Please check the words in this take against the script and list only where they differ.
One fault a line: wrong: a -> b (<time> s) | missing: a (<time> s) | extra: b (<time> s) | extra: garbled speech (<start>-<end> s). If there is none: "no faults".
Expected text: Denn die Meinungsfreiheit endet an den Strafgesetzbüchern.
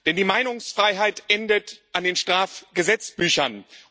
no faults